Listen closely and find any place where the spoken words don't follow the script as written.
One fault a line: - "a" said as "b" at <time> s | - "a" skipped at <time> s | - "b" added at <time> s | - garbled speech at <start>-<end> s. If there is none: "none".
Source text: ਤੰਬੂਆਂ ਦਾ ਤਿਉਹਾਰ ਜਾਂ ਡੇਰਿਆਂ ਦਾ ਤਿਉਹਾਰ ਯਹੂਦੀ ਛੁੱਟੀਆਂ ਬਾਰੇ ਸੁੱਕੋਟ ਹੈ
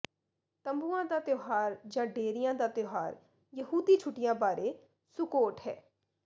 none